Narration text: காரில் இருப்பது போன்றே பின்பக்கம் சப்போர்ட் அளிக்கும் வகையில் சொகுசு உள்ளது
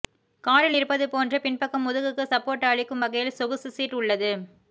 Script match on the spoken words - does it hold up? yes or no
no